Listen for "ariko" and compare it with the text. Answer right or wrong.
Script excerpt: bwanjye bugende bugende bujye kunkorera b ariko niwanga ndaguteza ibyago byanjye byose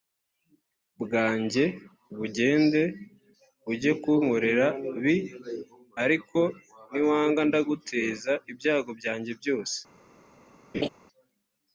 right